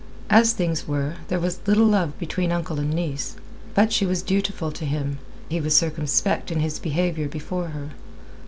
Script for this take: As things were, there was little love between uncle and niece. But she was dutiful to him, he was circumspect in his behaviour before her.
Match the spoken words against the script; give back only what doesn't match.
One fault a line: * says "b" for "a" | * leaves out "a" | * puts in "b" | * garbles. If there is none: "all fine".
all fine